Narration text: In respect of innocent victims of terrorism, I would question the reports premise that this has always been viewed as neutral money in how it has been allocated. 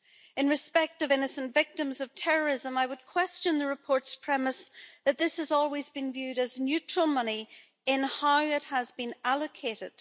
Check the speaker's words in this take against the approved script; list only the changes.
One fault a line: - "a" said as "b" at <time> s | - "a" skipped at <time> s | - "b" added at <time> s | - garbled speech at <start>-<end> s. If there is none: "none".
none